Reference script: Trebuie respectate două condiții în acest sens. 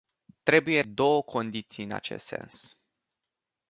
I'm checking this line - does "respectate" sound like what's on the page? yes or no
no